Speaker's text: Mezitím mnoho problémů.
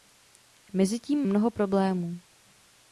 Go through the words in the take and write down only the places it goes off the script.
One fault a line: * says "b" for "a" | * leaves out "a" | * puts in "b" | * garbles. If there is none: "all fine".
all fine